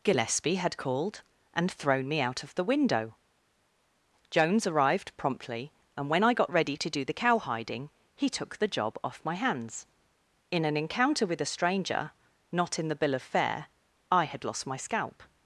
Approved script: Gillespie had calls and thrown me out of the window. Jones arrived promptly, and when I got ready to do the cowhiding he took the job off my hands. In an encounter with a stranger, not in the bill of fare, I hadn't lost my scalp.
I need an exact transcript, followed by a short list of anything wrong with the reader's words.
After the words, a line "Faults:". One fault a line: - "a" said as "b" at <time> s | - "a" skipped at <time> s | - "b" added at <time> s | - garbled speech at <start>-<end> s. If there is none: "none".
Gillespie had called and thrown me out of the window. Jones arrived promptly, and when I got ready to do the cowhiding he took the job off my hands. In an encounter with a stranger, not in the bill of fare, I had lost my scalp.
Faults:
- "calls" said as "called" at 0.8 s
- "hadn't" said as "had" at 14.2 s